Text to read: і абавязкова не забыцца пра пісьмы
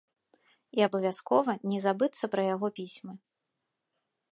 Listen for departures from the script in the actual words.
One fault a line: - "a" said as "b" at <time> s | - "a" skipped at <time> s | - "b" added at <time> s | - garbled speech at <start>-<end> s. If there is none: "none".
- "яго" added at 2.5 s